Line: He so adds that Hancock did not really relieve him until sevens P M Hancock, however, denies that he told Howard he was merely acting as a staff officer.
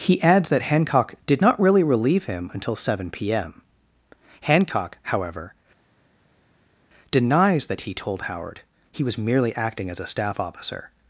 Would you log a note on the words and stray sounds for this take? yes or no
yes